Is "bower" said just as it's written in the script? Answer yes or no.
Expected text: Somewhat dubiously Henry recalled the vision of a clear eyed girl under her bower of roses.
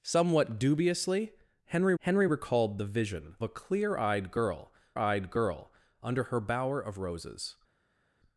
yes